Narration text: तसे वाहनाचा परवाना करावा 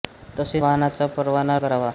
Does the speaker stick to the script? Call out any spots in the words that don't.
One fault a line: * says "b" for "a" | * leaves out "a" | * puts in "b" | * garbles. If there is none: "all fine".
all fine